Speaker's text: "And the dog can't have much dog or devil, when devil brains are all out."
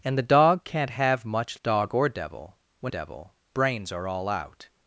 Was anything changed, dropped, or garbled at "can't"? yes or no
no